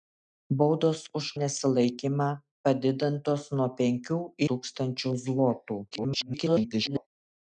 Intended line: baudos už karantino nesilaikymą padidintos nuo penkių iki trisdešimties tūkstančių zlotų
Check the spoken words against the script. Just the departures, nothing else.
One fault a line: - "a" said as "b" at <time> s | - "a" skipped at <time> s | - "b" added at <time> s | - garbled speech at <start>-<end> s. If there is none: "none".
- "karantino" skipped at 1.2 s
- "iki trisdešimties" skipped at 4.2 s
- garbled speech at 5.9-7.1 s